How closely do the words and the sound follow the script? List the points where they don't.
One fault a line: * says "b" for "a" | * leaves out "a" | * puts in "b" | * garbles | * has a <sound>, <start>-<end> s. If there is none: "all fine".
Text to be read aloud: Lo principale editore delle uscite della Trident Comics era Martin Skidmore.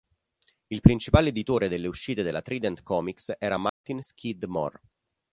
* says "Il" for "Lo"
* has a dropout, 3.7-3.8 s